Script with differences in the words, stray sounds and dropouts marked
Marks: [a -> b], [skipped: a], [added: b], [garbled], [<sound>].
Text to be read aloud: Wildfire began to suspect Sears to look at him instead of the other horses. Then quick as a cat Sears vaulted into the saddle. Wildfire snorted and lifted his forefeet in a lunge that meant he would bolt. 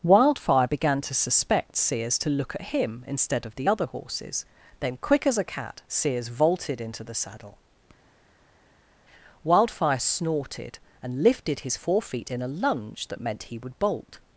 Wildfire began to suspect Sears to look at him instead of the other horses. Then quick as a cat Sears vaulted into the saddle. Wildfire snorted and lifted his forefeet in a lunge that meant he would bolt.